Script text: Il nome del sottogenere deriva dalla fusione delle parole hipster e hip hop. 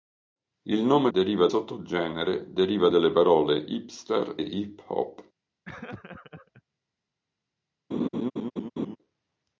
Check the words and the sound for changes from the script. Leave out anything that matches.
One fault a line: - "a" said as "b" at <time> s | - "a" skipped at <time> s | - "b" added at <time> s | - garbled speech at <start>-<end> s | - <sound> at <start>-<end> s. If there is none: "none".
- "del" said as "deriva" at 1.1 s
- "dalla fusione" skipped at 2.9 s
- "e" skipped at 4.4 s
- laugh at 5.7-6.6 s
- laugh at 7.9-9.0 s